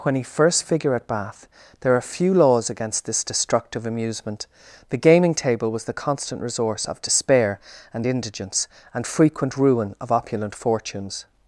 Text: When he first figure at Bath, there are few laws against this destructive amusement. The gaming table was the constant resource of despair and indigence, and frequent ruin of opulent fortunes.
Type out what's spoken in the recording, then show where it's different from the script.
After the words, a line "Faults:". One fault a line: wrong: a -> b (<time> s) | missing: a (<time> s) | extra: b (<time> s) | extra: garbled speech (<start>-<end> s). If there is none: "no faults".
When he first figure at Bath, there are few laws against this destructive amusement. The gaming table was the constant resource of despair and indigence, and frequent ruin of opulent fortunes.
Faults:
no faults